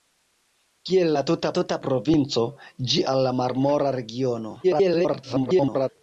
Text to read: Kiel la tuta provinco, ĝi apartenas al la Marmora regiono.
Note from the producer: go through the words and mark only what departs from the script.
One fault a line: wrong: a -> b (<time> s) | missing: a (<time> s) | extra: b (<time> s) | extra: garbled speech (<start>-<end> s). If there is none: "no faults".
extra: tuta (1.6 s)
missing: apartenas (3.0 s)
extra: garbled speech (4.6-5.9 s)